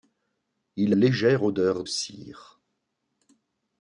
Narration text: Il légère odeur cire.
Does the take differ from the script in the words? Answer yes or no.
no